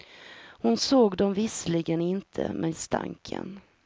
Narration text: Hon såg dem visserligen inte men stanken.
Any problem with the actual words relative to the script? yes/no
no